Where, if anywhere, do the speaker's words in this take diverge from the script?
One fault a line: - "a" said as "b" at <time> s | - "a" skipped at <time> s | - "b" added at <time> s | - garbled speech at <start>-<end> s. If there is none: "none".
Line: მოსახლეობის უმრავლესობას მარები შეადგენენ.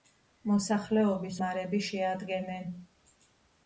- "უმრავლესობას" skipped at 1.4 s